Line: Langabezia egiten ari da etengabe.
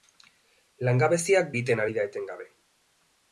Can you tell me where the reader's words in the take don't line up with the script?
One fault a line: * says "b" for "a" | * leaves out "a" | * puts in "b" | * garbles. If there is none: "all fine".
all fine